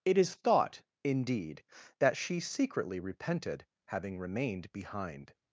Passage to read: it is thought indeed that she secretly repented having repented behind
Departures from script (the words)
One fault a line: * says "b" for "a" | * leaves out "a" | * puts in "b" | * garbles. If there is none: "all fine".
* says "remained" for "repented"